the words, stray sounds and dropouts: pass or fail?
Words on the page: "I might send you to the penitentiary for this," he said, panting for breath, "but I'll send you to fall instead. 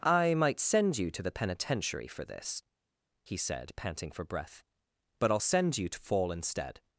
pass